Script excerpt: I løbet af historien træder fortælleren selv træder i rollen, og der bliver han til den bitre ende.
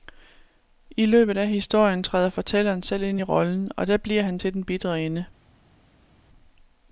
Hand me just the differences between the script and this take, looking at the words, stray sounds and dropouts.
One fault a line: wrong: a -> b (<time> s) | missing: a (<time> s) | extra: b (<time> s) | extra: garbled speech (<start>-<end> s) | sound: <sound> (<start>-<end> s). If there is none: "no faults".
wrong: træder -> ind (3.0 s)